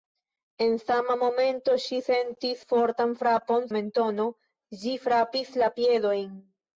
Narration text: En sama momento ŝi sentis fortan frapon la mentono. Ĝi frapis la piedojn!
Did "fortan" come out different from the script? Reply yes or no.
no